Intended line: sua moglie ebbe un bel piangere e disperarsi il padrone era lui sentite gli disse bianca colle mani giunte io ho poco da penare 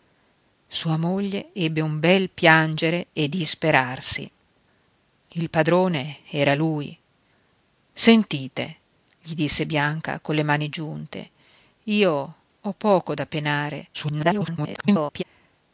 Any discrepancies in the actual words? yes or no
yes